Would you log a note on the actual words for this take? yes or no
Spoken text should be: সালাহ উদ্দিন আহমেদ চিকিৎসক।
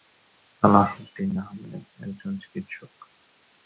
yes